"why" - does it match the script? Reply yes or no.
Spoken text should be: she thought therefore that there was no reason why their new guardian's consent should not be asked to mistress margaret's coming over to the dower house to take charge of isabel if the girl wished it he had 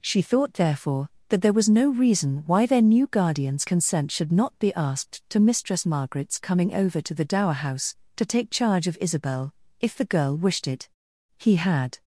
yes